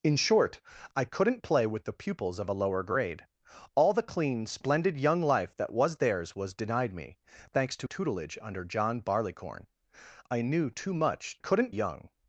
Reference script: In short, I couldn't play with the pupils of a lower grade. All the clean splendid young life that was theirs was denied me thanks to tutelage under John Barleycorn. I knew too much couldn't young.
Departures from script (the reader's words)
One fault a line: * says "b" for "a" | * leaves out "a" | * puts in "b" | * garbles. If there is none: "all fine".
all fine